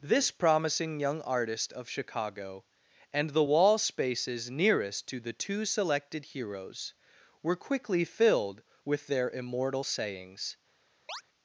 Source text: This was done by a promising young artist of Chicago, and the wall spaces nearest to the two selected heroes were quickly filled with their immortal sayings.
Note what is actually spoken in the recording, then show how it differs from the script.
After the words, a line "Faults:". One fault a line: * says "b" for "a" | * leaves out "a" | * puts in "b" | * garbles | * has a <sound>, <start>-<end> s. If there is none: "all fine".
This promising young artist of Chicago, and the wall spaces nearest to the two selected heroes were quickly filled with their immortal sayings.
Faults:
* leaves out "was done by a"
* has a chirp, 11.1-11.2 s